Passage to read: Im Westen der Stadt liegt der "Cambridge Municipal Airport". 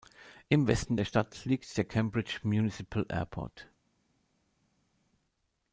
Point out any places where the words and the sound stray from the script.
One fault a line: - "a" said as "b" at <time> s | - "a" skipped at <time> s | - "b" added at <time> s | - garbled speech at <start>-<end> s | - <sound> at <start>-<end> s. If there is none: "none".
none